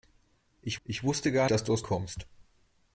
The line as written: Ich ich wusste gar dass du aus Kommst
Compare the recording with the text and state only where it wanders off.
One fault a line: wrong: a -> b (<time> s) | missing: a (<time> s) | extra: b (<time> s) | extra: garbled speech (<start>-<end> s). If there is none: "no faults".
no faults